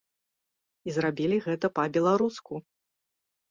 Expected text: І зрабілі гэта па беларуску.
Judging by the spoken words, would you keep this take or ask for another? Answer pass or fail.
pass